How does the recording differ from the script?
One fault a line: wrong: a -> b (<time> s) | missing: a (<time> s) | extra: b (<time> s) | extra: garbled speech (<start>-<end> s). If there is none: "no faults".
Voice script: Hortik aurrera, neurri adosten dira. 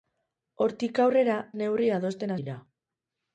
no faults